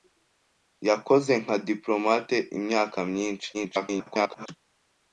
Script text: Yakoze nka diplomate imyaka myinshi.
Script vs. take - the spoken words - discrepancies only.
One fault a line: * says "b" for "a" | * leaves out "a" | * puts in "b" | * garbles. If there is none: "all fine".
* garbles